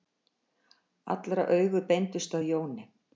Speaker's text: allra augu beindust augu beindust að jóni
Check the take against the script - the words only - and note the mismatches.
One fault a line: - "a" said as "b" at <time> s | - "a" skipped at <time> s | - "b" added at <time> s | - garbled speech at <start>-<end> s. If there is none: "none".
- "augu beindust" skipped at 2.4 s